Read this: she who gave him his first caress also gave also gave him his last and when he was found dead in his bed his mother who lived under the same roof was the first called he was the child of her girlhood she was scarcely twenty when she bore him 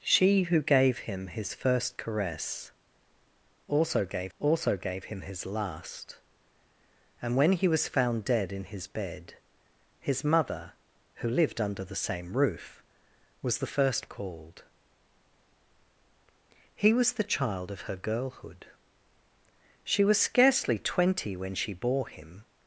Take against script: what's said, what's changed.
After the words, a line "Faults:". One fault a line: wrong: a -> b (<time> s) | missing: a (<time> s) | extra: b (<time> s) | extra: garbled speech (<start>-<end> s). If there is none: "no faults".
she who gave him his first caress also gave also gave him his last and when he was found dead in his bed his mother who lived under the same roof was the first called he was the child of her girlhood she was scarcely twenty when she bore him
Faults:
no faults